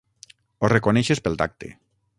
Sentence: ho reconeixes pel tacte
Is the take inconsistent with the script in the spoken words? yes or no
no